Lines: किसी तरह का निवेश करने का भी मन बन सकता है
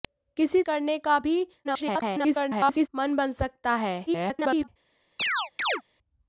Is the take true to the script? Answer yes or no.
no